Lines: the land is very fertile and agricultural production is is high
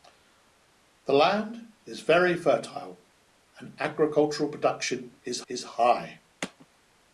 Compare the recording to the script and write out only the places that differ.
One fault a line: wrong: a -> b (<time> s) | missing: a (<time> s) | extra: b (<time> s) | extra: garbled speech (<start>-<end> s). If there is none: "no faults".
no faults